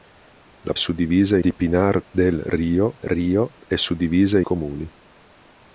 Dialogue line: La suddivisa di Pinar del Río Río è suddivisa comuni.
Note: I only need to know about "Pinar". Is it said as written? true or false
true